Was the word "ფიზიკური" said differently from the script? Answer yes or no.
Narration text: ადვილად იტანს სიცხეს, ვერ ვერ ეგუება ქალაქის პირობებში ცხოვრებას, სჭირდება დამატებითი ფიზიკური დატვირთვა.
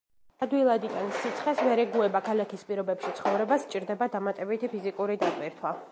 no